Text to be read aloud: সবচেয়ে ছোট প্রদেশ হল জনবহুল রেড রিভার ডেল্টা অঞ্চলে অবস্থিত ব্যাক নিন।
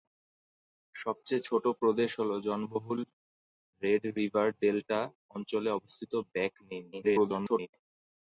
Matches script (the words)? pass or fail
fail